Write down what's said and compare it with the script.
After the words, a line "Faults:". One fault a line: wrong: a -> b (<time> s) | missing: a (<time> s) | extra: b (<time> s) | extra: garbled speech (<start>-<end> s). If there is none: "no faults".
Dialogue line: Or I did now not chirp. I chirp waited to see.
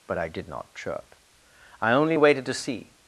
But I did not chirp. I only waited to see.
Faults:
wrong: Or -> But (0.1 s)
missing: now (0.5 s)
wrong: chirp -> only (1.9 s)